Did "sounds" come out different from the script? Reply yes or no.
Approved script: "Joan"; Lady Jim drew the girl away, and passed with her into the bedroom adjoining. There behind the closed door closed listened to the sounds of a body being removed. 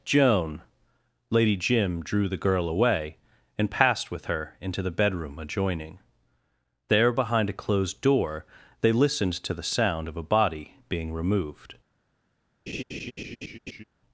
yes